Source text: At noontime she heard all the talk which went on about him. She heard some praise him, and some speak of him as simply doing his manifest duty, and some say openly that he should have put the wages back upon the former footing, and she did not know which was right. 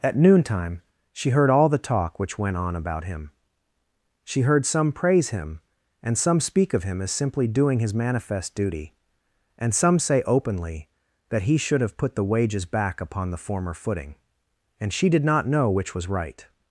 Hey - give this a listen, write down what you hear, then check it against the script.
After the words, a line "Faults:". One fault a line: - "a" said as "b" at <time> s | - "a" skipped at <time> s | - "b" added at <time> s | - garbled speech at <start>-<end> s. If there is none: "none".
At noontime she heard all the talk which went on about him. She heard some praise him, and some speak of him as simply doing his manifest duty, and some say openly that he should have put the wages back upon the former footing, and she did not know which was right.
Faults:
none